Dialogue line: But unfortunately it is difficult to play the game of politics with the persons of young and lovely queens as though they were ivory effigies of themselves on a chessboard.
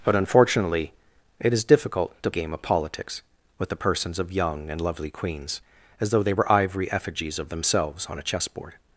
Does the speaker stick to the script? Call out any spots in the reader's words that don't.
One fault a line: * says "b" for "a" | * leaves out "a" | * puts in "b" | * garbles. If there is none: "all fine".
* leaves out "play the"